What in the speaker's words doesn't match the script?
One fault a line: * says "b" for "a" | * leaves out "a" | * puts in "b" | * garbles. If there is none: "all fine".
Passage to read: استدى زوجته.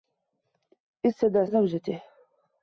all fine